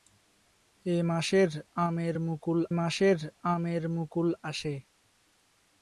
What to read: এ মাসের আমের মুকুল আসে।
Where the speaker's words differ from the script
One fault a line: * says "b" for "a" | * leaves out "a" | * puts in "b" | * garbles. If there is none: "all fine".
* puts in "মাসের আমের মুকুল"